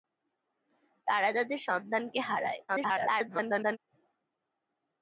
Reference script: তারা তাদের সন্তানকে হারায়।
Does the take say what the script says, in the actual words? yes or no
no